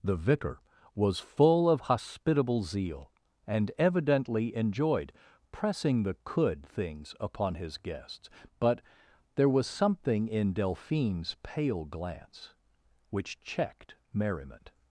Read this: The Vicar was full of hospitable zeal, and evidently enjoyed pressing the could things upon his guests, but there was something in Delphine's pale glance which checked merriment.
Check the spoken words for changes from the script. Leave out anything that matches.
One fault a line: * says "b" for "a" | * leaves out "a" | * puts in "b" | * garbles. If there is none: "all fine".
all fine